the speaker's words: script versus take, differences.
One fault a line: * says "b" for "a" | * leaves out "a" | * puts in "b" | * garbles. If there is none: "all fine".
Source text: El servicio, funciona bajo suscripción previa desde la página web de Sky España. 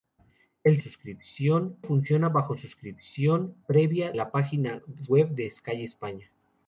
* says "suscripción" for "servicio"
* leaves out "desde"